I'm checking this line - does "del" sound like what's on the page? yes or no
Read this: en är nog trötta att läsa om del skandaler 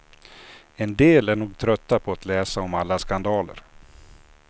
no